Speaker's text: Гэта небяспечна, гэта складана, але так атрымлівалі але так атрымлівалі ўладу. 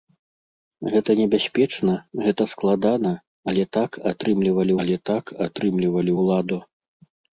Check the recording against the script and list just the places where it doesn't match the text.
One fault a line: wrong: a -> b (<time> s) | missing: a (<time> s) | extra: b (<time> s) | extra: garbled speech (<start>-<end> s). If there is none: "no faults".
no faults